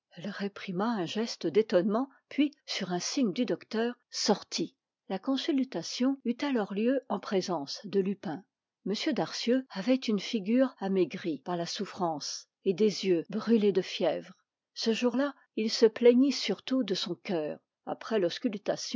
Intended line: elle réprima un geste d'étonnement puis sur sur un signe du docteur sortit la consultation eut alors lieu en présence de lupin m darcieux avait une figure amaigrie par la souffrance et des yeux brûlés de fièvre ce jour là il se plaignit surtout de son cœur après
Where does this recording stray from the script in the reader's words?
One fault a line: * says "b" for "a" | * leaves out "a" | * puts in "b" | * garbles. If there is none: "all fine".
* leaves out "sur"